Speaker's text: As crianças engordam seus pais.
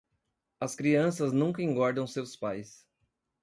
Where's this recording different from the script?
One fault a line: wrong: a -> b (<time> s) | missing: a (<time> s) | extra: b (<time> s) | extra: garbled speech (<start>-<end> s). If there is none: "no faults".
extra: nunca (1.3 s)